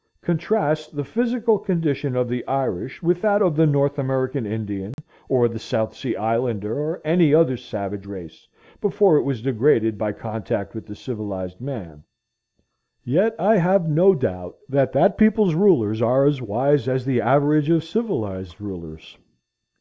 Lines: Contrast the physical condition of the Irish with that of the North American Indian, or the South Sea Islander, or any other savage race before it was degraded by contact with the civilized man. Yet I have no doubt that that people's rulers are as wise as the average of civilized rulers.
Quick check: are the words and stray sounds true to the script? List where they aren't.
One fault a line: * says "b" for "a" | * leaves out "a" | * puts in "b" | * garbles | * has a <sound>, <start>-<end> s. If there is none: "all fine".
* has a dropout, 4.9-5.0 s